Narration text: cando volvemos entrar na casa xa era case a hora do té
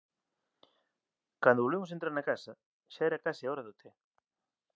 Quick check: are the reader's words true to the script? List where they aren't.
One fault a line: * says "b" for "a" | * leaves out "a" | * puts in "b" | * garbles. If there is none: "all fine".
all fine